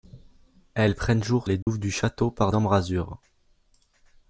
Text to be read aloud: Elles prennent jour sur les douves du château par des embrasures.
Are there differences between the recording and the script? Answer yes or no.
yes